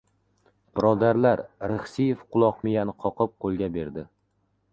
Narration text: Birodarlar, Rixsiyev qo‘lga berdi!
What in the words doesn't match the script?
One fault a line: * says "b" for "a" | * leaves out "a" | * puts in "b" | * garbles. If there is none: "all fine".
* puts in "quloq miyani qoqib"